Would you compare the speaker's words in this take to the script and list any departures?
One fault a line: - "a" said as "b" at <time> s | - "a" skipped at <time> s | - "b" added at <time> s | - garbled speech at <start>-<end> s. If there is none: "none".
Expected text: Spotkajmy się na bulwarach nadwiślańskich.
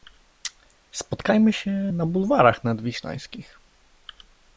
none